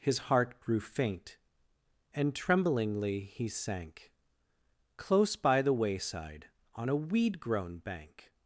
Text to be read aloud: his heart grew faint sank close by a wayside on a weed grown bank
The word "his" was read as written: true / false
true